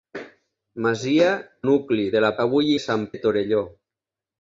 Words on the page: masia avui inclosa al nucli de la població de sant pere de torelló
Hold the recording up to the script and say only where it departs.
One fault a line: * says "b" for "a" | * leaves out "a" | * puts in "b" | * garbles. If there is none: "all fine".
* leaves out "avui inclosa al"
* says "avui" for "població"
* leaves out "pere"